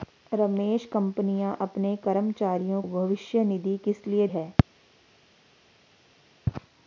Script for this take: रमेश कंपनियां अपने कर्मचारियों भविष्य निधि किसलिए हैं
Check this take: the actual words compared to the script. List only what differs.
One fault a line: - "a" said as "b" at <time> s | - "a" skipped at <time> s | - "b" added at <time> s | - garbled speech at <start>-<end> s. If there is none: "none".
none